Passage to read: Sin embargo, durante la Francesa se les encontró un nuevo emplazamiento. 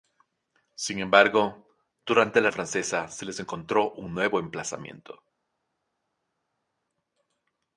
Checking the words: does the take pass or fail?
pass